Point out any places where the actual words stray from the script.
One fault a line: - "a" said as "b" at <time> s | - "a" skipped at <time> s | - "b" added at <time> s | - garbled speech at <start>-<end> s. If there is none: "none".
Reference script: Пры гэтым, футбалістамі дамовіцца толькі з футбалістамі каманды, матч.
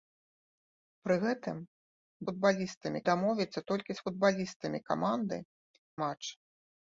none